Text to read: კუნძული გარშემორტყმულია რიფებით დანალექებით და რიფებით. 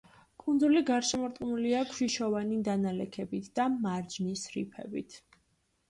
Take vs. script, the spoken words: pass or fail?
fail